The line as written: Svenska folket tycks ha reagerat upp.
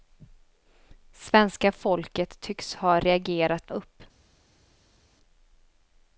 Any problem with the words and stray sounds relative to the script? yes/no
no